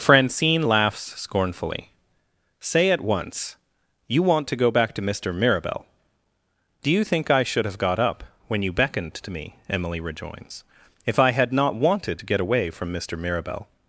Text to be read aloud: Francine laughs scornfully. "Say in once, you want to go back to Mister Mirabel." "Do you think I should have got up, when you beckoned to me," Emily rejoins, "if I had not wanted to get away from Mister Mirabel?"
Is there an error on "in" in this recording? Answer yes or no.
yes